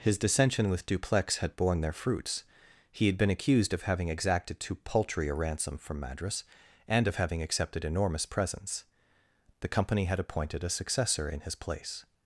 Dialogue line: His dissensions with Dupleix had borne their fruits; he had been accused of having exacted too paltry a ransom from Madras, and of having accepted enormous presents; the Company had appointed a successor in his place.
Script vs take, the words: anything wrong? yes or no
yes